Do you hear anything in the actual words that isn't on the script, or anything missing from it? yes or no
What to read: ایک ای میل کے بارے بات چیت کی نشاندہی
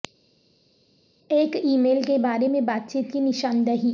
yes